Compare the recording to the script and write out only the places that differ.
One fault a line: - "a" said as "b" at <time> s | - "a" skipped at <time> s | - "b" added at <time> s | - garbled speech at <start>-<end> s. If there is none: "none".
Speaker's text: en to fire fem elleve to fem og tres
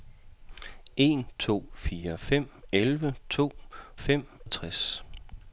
none